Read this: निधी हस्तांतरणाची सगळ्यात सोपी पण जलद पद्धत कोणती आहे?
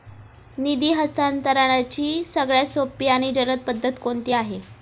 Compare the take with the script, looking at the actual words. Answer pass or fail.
fail